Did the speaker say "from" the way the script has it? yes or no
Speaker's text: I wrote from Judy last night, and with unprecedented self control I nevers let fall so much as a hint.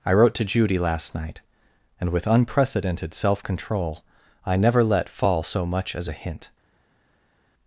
no